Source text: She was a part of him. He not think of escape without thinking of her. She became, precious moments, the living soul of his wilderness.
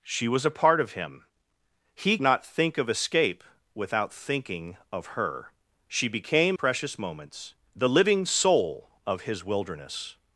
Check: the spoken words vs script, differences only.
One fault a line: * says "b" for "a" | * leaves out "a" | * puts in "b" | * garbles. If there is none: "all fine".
all fine